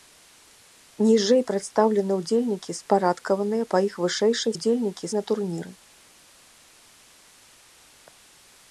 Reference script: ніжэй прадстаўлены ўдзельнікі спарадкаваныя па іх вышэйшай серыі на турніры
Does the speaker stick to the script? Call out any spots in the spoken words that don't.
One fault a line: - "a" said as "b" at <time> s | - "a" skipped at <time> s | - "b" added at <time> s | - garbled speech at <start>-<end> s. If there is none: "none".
- "серыі" said as "ўдзельнікі" at 4.6 s